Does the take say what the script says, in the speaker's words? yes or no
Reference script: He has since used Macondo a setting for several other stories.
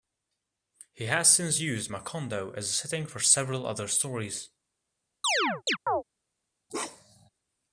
no